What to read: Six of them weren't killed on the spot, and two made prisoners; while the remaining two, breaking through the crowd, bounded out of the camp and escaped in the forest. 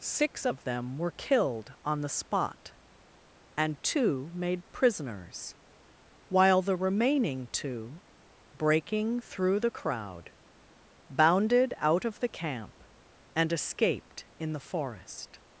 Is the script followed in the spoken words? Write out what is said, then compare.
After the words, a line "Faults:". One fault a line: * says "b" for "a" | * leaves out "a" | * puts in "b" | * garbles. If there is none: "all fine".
Six of them were killed on the spot, and two made prisoners; while the remaining two, breaking through the crowd, bounded out of the camp and escaped in the forest.
Faults:
* says "were" for "weren't"